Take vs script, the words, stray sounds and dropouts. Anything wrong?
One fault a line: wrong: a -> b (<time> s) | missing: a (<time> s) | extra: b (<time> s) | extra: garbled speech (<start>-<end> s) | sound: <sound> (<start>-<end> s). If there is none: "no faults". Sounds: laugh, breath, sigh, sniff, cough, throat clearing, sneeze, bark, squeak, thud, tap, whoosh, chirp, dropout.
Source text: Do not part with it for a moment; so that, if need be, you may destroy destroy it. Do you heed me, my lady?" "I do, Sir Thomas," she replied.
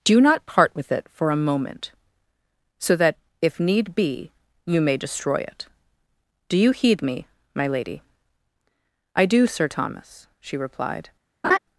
missing: destroy (5.4 s)
sound: laugh (11.4-11.6 s)